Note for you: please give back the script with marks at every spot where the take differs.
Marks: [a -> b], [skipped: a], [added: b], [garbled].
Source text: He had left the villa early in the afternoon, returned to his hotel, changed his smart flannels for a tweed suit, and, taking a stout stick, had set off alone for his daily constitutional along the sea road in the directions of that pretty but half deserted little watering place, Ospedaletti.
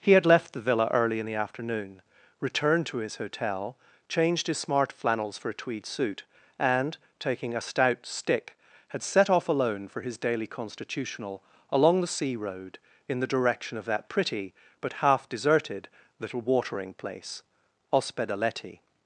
He had left the villa early in the afternoon, returned to his hotel, changed his smart flannels for a tweed suit, and, taking a stout stick, had set off alone for his daily constitutional along the sea road in the [directions -> direction] of that pretty but half deserted little watering place, Ospedaletti.